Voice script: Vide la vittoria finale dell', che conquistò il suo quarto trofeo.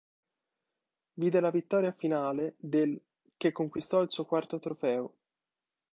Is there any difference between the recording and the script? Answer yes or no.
no